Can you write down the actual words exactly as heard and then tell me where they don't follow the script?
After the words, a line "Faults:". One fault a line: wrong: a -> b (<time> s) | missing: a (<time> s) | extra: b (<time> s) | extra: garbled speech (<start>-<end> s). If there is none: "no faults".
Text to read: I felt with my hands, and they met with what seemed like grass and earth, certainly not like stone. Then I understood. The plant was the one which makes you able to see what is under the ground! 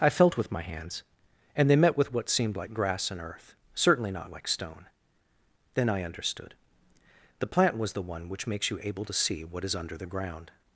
I felt with my hands, and they met with what seemed like grass and earth, certainly not like stone. Then I understood. The plant was the one which makes you able to see what is under the ground!
Faults:
no faults